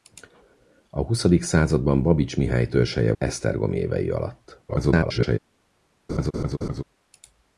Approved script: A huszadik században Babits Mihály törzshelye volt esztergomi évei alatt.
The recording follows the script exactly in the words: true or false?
false